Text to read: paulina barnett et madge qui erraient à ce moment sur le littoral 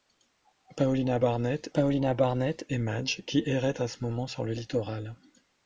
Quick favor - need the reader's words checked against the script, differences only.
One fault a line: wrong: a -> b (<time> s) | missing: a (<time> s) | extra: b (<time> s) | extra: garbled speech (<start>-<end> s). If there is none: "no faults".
extra: paulina barnett (1.7 s)